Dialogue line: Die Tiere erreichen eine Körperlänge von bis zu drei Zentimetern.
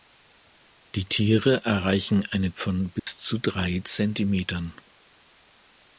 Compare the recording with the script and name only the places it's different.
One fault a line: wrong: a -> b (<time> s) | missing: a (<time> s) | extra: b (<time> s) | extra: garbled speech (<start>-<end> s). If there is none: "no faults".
missing: Körperlänge (2.5 s)